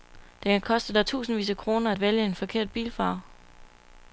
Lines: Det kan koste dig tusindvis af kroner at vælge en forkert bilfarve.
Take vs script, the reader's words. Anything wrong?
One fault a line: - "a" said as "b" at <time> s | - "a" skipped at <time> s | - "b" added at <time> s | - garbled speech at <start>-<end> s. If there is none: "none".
none